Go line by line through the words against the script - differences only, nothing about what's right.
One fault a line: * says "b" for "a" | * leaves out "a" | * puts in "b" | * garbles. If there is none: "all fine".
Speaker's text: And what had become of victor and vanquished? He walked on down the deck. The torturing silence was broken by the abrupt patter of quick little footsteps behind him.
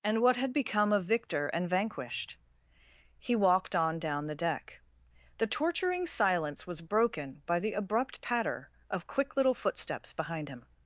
all fine